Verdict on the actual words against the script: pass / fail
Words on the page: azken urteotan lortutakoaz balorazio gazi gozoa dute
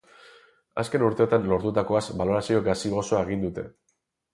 fail